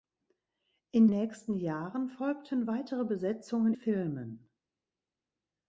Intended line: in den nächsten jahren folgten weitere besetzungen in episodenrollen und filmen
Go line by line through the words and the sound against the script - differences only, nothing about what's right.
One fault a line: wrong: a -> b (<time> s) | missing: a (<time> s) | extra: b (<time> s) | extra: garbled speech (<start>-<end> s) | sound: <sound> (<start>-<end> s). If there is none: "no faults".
missing: den (1.1 s)
missing: in episodenrollen und (3.7 s)